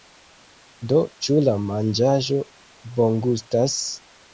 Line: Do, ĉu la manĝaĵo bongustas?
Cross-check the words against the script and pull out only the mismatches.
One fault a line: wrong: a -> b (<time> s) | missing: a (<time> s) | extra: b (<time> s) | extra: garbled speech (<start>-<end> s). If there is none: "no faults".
no faults